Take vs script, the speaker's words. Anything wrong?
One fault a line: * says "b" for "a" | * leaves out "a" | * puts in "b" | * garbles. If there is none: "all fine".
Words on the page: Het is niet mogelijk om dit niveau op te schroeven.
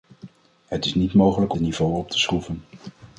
* leaves out "om"